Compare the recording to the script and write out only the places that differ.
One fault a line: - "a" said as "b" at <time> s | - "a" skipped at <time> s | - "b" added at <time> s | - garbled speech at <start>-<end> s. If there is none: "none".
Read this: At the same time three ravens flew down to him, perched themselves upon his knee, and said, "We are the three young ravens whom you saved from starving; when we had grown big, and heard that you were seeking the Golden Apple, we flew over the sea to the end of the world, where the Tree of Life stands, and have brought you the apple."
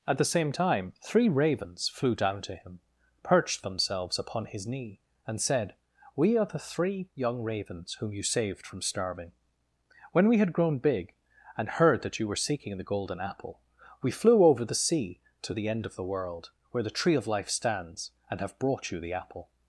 none